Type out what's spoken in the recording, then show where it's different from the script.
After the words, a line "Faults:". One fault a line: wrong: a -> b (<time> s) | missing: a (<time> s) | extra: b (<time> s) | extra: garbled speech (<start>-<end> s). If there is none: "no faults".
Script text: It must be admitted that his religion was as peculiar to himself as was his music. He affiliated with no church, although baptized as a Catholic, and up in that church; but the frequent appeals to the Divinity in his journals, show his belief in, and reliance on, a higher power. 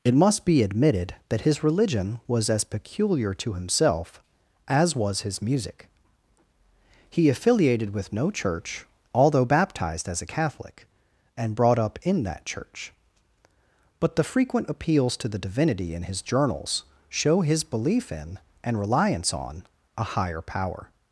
It must be admitted that his religion was as peculiar to himself as was his music. He affiliated with no church, although baptized as a Catholic, and brought up in that church; but the frequent appeals to the Divinity in his journals, show his belief in, and reliance on, a higher power.
Faults:
extra: brought (11.6 s)